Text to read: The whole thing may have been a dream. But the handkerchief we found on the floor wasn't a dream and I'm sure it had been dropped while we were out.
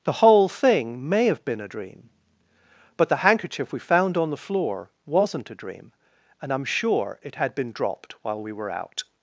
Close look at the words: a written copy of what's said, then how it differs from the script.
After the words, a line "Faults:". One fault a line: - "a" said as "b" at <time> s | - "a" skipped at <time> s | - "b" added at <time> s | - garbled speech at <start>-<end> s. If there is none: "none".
The whole thing may have been a dream. But the handkerchief we found on the floor wasn't a dream and I'm sure it had been dropped while we were out.
Faults:
none